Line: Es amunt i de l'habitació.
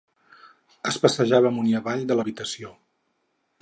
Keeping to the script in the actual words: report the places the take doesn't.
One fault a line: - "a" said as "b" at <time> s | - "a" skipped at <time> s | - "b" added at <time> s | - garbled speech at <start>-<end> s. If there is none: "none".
- "passejava" added at 1.0 s
- "avall" added at 1.8 s